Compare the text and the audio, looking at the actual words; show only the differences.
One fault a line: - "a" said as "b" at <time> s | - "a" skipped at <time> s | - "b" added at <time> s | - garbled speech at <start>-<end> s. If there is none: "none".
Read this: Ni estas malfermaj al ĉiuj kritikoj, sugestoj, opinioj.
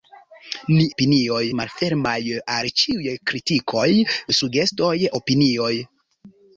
- "estas" said as "opinioj" at 0.9 s